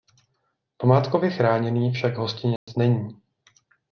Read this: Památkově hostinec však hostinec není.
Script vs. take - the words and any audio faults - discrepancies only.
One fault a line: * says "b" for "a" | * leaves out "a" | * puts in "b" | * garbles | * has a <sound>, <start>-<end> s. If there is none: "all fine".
* says "chráněný" for "hostinec"
* has a dropout, 2.6-2.7 s